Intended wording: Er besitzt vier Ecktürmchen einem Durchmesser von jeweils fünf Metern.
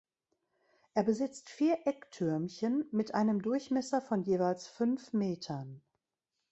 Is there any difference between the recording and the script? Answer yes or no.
yes